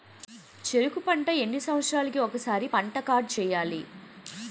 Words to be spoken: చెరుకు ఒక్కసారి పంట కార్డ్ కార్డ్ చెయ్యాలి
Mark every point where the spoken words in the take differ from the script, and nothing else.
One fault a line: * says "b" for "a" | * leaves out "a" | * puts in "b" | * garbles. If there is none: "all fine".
* puts in "పంట ఎన్ని సంవత్సరాలకి"
* leaves out "కార్డ్"